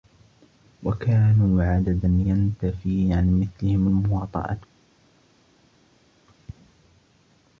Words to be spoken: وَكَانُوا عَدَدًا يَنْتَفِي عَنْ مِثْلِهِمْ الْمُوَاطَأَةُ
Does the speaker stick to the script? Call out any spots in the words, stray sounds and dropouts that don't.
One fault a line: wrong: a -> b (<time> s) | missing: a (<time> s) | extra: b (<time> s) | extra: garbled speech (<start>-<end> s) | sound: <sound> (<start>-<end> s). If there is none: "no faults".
no faults